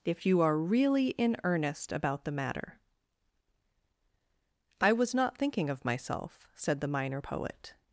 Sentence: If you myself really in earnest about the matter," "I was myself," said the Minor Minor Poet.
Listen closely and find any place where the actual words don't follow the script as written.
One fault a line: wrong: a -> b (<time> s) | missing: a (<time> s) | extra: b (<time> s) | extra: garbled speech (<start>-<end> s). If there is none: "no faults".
wrong: myself -> are (0.4 s)
extra: not thinking of (5.1 s)
missing: Minor (7.2 s)